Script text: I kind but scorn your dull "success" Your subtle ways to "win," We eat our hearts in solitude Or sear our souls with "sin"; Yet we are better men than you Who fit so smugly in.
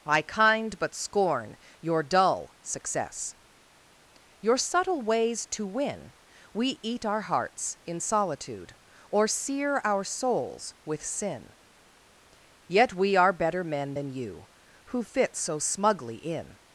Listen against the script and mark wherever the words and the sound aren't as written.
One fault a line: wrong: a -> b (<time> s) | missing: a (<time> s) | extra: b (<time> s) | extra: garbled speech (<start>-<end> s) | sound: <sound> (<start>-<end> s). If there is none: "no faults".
no faults